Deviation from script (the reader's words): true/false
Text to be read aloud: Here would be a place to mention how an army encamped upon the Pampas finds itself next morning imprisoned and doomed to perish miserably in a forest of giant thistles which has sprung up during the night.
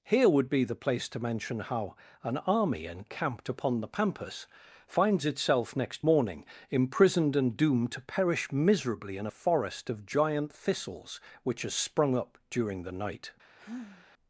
true